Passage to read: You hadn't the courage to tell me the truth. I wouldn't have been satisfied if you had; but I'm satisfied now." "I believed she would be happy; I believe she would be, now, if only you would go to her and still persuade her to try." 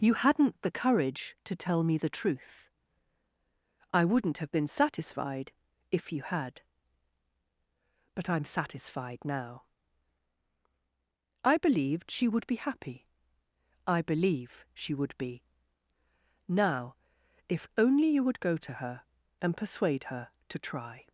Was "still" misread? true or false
true